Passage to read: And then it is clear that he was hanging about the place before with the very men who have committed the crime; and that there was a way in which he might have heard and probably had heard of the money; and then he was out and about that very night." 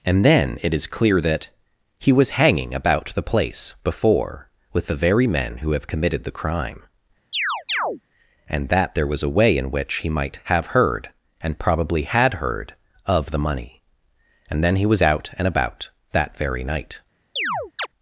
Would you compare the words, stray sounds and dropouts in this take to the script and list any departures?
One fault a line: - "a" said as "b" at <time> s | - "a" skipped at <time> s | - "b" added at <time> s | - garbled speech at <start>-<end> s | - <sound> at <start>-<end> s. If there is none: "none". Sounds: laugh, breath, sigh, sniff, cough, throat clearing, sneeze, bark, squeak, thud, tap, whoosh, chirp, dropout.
- chirp at 7.3-8.0 s
- chirp at 17.4-17.9 s